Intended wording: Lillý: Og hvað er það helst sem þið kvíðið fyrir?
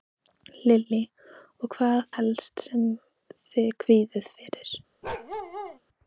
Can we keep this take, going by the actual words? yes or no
no